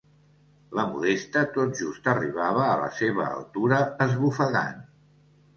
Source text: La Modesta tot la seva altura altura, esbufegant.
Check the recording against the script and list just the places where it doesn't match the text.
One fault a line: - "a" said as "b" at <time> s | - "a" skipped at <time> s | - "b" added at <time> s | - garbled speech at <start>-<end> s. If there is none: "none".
- "just arribava a" added at 1.8 s
- "altura" skipped at 3.8 s